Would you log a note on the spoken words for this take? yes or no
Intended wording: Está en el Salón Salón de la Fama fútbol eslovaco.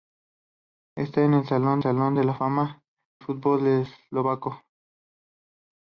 no